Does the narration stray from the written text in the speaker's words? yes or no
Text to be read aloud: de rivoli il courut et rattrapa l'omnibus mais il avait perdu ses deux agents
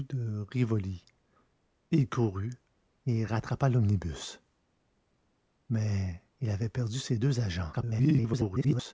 yes